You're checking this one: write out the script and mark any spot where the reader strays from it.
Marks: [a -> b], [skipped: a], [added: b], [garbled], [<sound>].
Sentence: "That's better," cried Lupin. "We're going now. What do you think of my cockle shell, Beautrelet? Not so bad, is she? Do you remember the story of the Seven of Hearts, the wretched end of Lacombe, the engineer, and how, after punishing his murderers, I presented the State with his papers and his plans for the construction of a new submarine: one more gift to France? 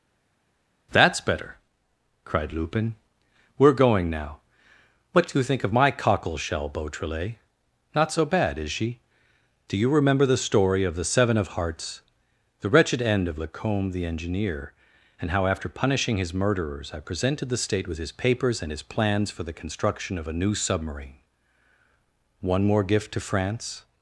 "That's better," cried Lupin. "We're going now. What do you think of my cockle shell, Beautrelet? Not so bad, is she? Do you remember the story of the Seven of Hearts, the wretched end of Lacombe, the engineer, and how, after punishing his murderers, I presented the State with his papers and his plans for the construction of a new submarine: one more gift to France?